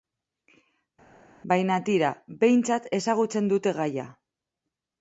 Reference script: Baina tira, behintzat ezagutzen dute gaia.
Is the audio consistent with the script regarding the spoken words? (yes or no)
yes